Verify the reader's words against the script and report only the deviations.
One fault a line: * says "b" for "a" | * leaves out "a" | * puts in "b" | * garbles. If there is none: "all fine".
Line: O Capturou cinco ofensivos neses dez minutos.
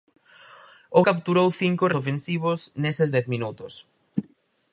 all fine